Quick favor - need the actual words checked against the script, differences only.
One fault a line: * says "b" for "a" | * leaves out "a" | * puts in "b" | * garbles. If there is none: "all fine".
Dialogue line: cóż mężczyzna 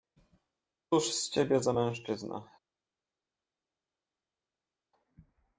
* puts in "z ciebie za"